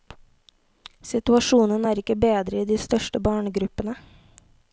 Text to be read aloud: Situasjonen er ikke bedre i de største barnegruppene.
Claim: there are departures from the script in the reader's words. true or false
false